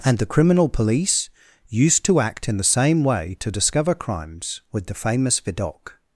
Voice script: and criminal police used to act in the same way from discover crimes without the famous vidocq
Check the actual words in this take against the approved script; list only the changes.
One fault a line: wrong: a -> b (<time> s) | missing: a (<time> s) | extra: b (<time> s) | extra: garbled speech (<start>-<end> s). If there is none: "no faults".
extra: the (0.2 s)
wrong: from -> to (3.4 s)
wrong: without -> with (4.7 s)